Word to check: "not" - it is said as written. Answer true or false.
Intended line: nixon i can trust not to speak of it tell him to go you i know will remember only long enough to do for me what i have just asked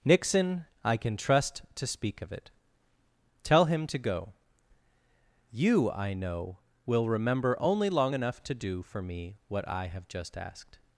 false